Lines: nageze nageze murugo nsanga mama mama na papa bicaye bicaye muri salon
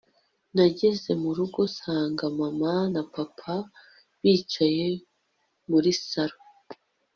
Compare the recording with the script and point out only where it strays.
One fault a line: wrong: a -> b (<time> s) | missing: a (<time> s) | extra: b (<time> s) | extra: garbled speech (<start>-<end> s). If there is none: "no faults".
missing: nageze (1.1 s)
missing: mama (2.7 s)
missing: bicaye (4.9 s)